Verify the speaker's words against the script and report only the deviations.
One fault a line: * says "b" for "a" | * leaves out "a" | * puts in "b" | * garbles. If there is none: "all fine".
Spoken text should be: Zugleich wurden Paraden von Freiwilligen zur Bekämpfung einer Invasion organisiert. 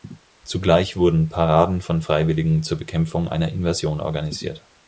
all fine